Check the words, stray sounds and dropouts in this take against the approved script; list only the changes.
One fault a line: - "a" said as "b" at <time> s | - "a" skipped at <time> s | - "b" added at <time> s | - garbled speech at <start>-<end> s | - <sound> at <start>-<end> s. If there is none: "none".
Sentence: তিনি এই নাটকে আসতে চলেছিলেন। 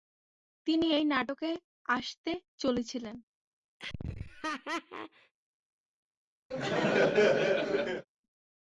- laugh at 3.8-5.3 s
- laugh at 6.5-8.1 s